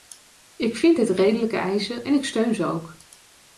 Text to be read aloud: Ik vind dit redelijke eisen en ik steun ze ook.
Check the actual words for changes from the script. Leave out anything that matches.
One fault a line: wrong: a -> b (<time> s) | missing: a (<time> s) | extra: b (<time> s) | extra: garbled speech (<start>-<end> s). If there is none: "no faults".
no faults